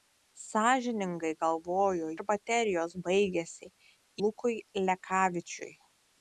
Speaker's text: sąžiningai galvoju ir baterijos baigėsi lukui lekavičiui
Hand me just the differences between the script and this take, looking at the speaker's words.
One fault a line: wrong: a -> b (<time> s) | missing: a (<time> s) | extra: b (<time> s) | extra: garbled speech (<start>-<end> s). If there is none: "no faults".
no faults